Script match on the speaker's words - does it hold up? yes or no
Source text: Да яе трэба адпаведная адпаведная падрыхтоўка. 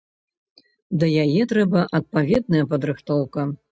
no